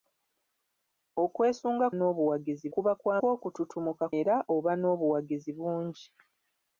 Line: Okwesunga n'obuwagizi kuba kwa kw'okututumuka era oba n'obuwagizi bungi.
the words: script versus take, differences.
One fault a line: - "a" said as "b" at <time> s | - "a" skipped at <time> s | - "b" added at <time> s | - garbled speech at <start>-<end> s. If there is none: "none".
none